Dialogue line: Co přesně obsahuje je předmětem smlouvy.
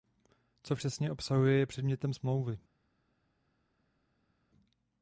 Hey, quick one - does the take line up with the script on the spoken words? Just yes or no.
yes